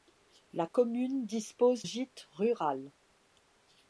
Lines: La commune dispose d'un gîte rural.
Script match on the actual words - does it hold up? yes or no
no